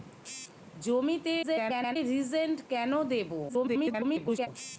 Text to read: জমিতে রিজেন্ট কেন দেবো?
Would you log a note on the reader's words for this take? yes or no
yes